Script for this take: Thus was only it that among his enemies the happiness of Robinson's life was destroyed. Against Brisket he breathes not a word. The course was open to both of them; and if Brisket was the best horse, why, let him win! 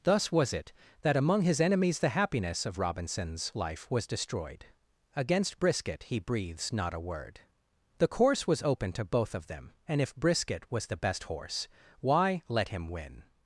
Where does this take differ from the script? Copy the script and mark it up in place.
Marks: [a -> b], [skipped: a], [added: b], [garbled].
Thus was [skipped: only] it that among his enemies the happiness of Robinson's life was destroyed. Against Brisket he breathes not a word. The course was open to both of them; and if Brisket was the best horse, why, let him win!